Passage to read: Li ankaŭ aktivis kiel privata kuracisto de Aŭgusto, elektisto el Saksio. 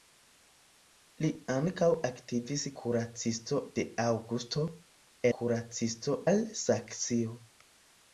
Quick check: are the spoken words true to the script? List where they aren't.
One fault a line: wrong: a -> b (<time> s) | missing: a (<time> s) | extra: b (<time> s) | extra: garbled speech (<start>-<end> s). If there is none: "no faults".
missing: kiel privata (2.6 s)
wrong: elektisto -> kuracisto (5.4 s)